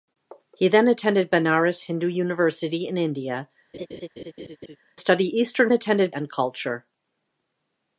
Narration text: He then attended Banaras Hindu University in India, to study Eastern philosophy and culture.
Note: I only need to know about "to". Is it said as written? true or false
false